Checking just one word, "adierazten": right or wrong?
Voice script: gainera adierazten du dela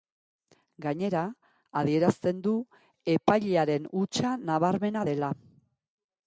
right